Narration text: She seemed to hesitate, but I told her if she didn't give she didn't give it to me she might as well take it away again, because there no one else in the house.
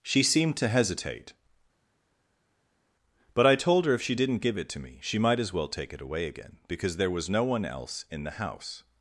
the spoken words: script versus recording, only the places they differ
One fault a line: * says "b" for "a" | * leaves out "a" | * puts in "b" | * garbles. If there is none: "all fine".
* leaves out "she didn't give"
* puts in "was"